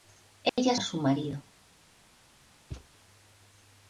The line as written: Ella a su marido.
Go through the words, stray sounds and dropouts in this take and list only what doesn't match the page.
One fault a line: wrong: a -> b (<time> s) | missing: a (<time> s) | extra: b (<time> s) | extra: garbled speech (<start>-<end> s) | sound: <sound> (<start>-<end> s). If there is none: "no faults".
sound: dropout (0.5-0.6 s)
sound: thud (2.7-2.9 s)